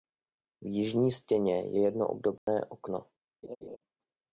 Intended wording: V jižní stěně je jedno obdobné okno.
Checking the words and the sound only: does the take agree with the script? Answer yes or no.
no